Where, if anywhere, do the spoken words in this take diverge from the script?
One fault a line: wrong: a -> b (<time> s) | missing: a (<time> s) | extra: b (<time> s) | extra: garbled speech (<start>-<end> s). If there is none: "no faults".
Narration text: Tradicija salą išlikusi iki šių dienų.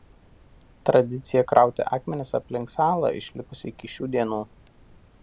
extra: krauti akmenis aplink (1.5 s)